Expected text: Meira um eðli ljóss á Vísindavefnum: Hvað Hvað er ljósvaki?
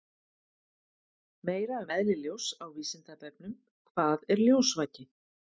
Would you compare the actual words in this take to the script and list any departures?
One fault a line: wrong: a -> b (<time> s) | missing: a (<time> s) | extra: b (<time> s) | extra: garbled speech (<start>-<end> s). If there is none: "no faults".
missing: Hvað (4.3 s)